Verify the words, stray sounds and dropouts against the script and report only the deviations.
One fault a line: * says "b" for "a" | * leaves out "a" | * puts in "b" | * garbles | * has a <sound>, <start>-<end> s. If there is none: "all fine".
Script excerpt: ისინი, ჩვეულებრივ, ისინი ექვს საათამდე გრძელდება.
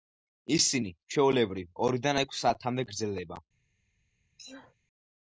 * says "ორიდან" for "ისინი"
* has a sneeze, 4.4-4.8 s